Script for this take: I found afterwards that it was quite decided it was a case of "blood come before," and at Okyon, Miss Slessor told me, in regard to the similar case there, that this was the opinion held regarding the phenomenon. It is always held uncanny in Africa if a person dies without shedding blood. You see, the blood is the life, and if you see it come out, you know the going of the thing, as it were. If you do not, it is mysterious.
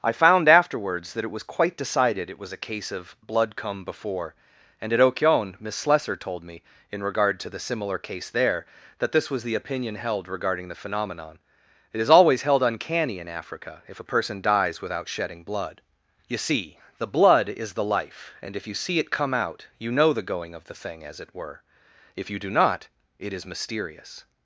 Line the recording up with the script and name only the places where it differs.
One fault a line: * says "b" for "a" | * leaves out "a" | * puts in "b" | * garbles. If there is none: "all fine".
all fine